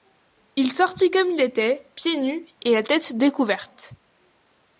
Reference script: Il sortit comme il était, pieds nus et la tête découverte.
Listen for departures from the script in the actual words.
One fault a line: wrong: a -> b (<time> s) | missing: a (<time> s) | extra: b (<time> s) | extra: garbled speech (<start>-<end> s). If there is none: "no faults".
no faults